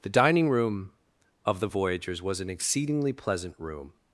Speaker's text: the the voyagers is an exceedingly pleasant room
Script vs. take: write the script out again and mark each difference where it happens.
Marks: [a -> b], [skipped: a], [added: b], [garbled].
the [added: dining room of] the voyagers [is -> was] an exceedingly pleasant room